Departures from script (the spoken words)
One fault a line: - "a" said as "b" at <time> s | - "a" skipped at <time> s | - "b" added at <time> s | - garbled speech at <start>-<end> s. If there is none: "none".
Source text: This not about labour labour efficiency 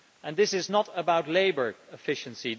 - "is" added at 0.5 s
- "labour" skipped at 1.7 s